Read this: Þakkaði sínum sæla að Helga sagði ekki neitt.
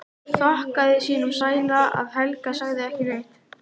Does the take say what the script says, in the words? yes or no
yes